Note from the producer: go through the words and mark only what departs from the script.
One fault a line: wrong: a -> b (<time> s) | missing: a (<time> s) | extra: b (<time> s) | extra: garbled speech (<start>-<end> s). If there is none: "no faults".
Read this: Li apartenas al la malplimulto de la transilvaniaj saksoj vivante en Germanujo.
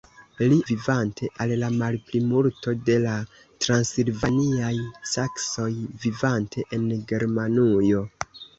wrong: apartenas -> vivante (0.7 s)